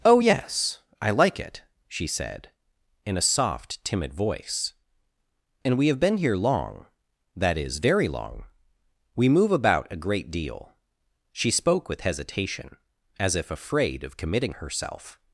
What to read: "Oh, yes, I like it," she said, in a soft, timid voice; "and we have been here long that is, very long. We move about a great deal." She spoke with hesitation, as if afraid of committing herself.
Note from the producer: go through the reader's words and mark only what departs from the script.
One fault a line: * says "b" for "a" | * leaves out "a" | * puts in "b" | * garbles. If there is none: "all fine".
all fine